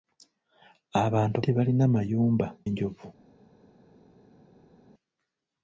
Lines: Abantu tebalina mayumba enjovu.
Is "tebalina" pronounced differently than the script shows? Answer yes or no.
no